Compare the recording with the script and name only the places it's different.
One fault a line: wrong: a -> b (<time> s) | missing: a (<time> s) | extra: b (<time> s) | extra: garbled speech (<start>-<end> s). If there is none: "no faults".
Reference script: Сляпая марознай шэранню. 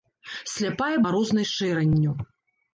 no faults